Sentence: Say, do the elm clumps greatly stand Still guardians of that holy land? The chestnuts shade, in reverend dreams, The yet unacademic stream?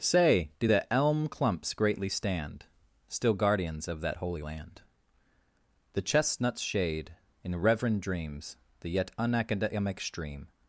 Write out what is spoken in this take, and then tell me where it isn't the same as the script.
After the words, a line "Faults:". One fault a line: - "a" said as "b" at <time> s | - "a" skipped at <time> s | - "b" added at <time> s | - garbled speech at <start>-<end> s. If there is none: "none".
Say, do the elm clumps greatly stand Still guardians of that holy land? The chestnuts shade, in reverend dreams, The yet unacademic stream?
Faults:
none